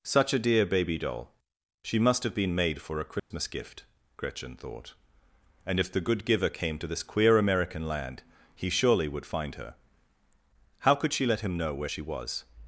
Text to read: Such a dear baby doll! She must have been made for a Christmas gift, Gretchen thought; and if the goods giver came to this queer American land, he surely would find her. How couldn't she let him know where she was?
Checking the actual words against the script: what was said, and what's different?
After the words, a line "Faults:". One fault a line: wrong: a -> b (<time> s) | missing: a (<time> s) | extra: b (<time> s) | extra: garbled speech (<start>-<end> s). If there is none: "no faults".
Such a dear baby doll! She must have been made for a Christmas gift, Gretchen thought; and if the good giver came to this queer American land, he surely would find her. How could she let him know where she was?
Faults:
wrong: goods -> good (6.0 s)
wrong: couldn't -> could (10.9 s)